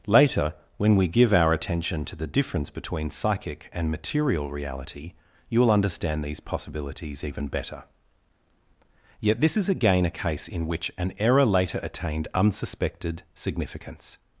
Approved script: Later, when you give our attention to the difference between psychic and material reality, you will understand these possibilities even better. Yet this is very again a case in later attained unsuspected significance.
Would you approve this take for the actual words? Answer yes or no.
no